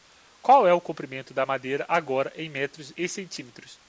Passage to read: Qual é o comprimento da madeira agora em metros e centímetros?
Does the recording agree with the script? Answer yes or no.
yes